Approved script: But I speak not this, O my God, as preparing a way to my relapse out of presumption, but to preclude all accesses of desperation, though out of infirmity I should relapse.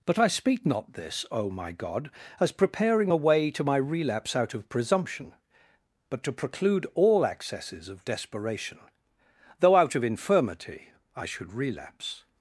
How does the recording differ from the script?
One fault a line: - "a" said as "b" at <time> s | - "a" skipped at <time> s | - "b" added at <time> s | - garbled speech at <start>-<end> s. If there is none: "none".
none